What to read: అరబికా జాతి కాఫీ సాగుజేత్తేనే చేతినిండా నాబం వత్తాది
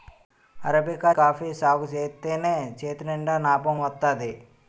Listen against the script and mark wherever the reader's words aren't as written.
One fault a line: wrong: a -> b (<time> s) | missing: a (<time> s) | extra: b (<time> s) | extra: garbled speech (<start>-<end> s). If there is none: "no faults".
missing: జాతి (1.1 s)